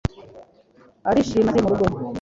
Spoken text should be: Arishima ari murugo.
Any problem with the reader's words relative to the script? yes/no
no